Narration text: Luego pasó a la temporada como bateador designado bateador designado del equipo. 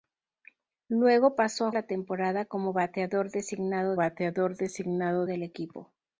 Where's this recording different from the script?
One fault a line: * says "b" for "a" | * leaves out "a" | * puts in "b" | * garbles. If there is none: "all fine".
all fine